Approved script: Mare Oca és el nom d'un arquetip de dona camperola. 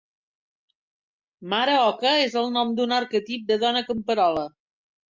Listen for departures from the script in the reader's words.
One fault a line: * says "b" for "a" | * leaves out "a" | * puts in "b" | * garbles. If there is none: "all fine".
all fine